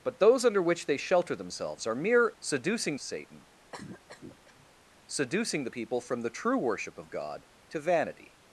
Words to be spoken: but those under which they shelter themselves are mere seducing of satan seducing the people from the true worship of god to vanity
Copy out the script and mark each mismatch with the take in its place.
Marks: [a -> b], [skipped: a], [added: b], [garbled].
but those under which they shelter themselves are mere seducing of satan seducing the people from the true worship of god to vanity